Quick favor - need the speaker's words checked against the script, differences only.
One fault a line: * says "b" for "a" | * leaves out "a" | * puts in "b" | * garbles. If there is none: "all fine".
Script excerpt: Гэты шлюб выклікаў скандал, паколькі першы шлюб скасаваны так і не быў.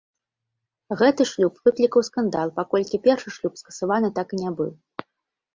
all fine